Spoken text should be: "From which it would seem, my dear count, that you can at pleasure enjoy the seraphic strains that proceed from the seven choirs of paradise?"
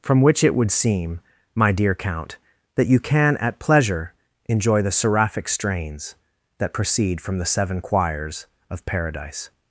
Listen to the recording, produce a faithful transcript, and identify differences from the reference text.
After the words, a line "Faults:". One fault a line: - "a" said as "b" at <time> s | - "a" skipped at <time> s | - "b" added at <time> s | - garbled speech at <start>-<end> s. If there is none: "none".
"From which it would seem, my dear count, that you can at pleasure enjoy the seraphic strains that proceed from the seven choirs of paradise?"
Faults:
none